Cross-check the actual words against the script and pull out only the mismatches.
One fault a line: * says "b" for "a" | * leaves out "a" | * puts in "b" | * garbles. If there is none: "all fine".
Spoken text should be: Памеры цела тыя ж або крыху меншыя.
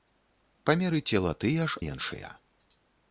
* leaves out "або крыху"